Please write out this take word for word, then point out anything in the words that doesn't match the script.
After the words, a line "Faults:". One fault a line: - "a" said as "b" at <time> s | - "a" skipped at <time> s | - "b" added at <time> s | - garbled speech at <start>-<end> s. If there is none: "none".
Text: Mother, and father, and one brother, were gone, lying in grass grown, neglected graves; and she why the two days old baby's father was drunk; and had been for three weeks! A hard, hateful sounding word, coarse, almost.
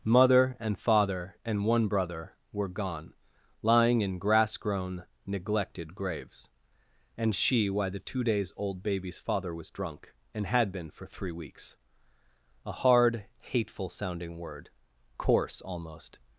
Mother, and father, and one brother, were gone, lying in grass grown, neglected graves; and she why the two days old baby's father was drunk; and had been for three weeks! A hard, hateful sounding word, coarse, almost.
Faults:
none